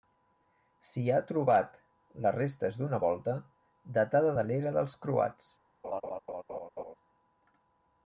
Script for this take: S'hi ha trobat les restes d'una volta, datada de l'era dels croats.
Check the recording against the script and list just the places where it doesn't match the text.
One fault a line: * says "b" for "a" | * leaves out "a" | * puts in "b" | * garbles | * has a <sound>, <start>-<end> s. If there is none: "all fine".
* has a laugh, 5.8-6.9 s